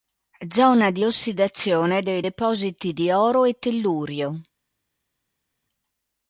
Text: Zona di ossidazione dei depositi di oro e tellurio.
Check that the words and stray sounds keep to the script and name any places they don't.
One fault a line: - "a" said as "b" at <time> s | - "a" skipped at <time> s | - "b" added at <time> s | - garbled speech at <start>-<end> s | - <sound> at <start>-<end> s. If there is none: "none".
none